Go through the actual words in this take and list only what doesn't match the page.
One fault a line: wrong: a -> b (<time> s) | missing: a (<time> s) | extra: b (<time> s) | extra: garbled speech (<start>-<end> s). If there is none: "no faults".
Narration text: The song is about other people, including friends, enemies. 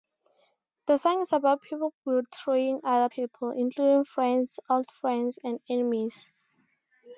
extra: people betraying (1.6 s)
extra: old friends and (4.7 s)